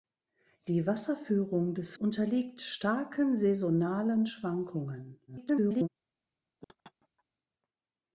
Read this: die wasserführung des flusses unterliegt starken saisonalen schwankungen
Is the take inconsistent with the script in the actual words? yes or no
yes